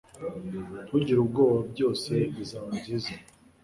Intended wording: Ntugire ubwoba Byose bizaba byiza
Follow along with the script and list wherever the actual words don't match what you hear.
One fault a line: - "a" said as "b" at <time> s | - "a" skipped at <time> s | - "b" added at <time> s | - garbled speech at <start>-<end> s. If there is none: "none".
none